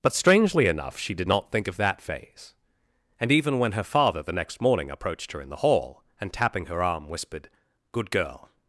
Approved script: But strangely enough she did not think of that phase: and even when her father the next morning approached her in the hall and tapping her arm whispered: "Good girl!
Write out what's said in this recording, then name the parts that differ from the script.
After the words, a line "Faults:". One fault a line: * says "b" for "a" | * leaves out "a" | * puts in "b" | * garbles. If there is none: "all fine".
But strangely enough she did not think of that phase: and even when her father the next morning approached her in the hall and tapping her arm whispered: "Good girl!
Faults:
all fine